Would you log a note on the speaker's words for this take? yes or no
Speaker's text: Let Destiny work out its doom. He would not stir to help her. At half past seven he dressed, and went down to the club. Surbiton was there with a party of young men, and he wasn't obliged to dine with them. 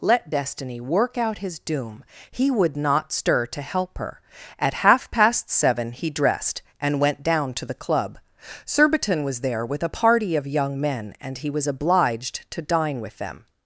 yes